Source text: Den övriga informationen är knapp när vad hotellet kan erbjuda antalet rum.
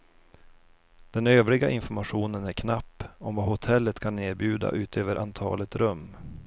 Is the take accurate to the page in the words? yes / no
no